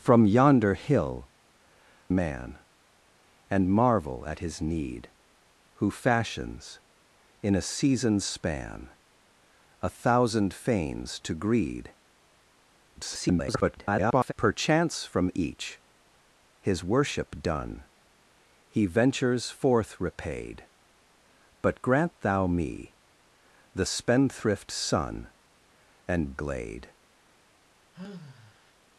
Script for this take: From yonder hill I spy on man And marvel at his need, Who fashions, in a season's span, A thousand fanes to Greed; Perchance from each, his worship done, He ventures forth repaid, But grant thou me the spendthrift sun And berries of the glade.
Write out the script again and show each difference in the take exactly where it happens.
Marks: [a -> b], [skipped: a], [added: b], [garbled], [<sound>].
From yonder hill [skipped: I spy on] man And marvel at his need, Who fashions, in a season's span, A thousand fanes to Greed; [garbled] Perchance from each, his worship done, He ventures forth repaid, But grant thou me the spendthrift sun And [skipped: berries of the] glade. [sigh]